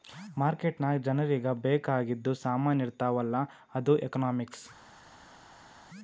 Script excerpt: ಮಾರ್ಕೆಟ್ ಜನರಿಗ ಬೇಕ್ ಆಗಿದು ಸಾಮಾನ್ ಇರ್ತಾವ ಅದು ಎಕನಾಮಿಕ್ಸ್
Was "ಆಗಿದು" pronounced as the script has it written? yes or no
yes